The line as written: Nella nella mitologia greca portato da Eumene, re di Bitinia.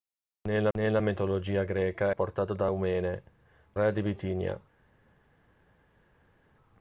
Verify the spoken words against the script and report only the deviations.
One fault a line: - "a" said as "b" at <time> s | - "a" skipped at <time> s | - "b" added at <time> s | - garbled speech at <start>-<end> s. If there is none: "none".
none